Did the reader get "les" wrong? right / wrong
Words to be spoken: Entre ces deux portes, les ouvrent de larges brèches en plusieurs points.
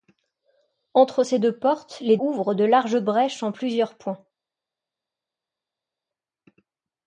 right